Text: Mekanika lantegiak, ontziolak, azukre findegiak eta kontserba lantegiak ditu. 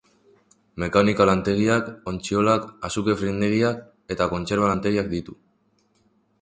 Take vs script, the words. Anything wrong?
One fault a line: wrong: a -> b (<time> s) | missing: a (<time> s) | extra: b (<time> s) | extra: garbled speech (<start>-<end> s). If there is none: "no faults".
no faults